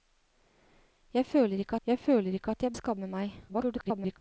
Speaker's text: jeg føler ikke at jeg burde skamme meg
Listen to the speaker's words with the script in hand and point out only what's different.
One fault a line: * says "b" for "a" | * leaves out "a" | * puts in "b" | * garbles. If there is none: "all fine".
* puts in "jeg føler ikke"
* leaves out "burde"
* garbles